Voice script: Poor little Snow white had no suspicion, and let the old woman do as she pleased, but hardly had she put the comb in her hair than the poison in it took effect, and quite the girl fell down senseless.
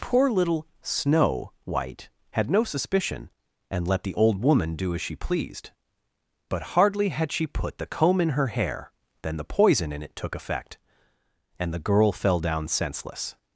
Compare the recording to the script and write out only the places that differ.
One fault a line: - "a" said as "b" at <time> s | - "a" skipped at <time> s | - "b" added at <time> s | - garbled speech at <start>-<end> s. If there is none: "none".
- "quite" skipped at 11.7 s